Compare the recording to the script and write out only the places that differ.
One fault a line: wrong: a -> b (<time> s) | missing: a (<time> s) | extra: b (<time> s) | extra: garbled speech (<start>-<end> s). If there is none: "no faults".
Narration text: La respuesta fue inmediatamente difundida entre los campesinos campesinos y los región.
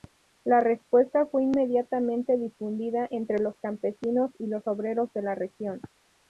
missing: campesinos (4.3 s)
extra: obreros de la (4.7 s)